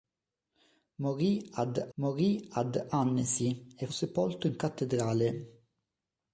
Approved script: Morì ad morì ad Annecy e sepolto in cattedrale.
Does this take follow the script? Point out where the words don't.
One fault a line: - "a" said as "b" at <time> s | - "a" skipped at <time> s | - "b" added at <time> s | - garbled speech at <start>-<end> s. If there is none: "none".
none